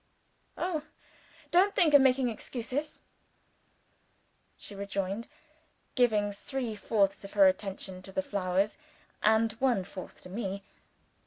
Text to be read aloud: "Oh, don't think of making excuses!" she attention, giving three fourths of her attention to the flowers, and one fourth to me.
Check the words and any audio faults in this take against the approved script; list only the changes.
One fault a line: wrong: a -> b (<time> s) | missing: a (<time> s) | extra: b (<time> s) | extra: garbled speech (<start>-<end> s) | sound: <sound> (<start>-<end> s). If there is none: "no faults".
wrong: attention -> rejoined (4.7 s)